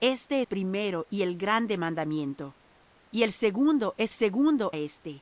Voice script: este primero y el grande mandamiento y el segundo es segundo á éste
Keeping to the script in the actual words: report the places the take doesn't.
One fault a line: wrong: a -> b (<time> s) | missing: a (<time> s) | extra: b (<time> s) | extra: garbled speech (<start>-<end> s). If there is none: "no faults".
no faults